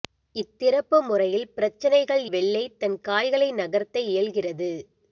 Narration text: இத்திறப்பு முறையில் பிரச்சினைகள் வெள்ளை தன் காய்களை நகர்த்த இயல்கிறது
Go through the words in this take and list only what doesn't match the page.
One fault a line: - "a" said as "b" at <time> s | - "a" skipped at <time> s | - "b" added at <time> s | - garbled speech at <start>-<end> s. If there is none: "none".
none